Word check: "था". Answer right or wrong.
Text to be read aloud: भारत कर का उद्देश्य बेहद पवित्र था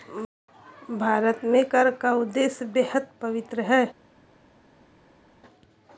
wrong